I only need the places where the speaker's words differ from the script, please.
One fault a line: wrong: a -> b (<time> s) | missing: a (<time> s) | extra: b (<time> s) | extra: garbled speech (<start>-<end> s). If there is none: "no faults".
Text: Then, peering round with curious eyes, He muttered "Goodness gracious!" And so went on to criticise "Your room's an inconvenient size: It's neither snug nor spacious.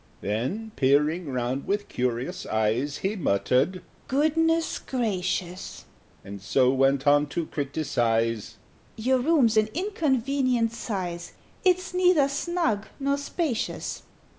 no faults